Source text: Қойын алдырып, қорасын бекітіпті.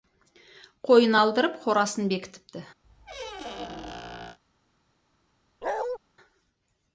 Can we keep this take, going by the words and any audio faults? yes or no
no